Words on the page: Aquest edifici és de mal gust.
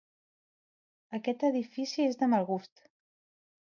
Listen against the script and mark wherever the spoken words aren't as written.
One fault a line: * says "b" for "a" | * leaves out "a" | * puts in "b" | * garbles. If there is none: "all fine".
all fine